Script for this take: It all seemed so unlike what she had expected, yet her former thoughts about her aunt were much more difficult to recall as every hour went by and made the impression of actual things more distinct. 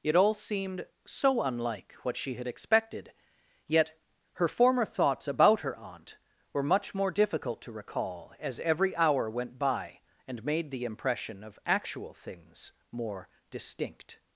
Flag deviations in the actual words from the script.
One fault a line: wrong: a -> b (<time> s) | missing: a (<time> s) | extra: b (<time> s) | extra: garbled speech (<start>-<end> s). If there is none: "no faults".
no faults